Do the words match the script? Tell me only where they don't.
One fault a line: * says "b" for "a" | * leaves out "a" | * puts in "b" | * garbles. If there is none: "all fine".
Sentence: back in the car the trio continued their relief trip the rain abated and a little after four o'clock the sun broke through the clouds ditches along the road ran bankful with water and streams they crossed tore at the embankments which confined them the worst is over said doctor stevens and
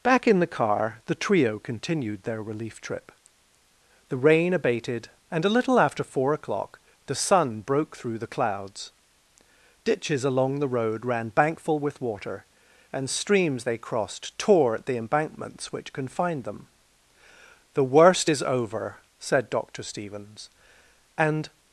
all fine